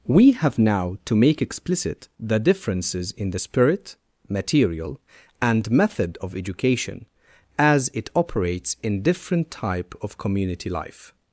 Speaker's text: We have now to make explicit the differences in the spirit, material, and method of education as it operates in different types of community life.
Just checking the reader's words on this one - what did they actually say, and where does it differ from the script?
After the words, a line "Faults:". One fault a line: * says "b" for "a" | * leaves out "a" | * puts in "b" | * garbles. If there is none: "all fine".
We have now to make explicit the differences in the spirit, material, and method of education as it operates in different type of community life.
Faults:
* says "type" for "types"